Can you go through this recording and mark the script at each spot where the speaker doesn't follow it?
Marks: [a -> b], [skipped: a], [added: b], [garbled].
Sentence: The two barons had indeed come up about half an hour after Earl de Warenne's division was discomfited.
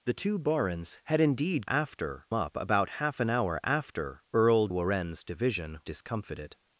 The two barons had indeed [come -> after] up about half an hour after Earl [skipped: de] Warenne's division [skipped: was] discomfited.